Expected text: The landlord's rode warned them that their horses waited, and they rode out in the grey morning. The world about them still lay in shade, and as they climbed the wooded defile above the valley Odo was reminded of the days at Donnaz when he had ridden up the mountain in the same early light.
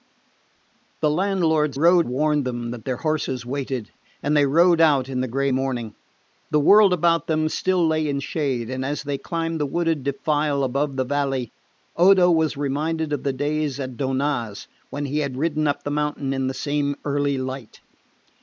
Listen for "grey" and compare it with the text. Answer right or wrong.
right